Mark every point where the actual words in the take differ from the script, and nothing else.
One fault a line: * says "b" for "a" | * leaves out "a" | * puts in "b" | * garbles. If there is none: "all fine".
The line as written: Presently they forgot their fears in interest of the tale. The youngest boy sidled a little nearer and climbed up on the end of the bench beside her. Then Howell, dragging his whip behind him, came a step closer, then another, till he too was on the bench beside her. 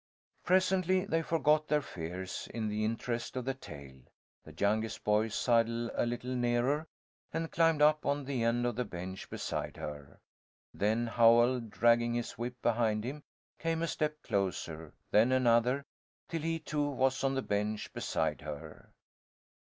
* puts in "the"